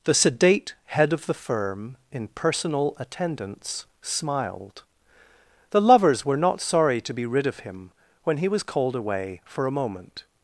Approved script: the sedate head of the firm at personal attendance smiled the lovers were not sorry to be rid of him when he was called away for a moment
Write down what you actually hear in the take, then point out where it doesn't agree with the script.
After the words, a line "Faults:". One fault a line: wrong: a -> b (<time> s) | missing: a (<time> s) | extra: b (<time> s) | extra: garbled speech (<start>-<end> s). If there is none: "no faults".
the sedate head of the firm in personal attendance smiled the lovers were not sorry to be rid of him when he was called away for a moment
Faults:
wrong: at -> in (2.1 s)